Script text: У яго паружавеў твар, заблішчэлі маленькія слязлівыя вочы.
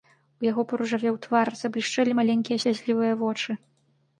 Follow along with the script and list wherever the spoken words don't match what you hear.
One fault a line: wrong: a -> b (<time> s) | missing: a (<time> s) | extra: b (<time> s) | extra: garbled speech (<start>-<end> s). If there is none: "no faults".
no faults